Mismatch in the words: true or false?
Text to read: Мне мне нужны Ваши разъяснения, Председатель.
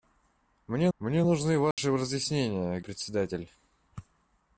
false